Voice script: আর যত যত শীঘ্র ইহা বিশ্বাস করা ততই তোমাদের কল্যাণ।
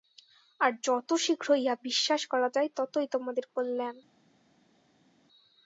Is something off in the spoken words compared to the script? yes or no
yes